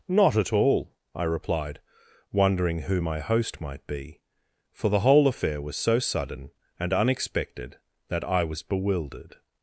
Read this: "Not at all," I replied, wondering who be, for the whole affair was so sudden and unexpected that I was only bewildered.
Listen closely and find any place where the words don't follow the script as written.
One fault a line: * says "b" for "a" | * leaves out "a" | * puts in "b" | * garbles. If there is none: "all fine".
* puts in "my host might"
* leaves out "only"